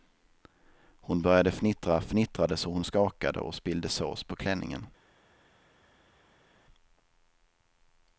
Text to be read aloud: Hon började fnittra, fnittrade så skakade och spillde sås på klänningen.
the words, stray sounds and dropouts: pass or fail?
fail